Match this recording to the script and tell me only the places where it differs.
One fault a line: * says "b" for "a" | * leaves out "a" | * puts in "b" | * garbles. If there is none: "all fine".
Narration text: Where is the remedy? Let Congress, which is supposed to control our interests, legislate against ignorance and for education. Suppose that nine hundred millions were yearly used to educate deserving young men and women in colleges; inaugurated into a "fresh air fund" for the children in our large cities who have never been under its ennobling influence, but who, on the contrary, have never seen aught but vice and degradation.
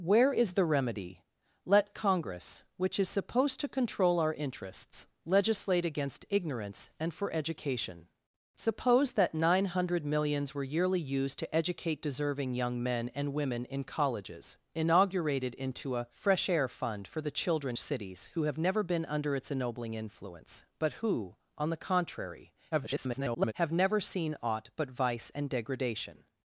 * leaves out "in our large"
* garbles